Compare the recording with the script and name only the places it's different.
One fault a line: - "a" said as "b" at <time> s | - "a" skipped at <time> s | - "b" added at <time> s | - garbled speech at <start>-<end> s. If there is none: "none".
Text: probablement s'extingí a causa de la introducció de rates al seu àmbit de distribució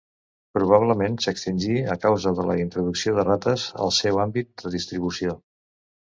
none